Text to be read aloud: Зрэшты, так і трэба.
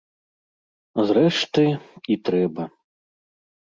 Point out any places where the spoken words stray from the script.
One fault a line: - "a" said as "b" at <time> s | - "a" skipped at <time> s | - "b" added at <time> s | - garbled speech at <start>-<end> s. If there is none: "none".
- "так" skipped at 1.6 s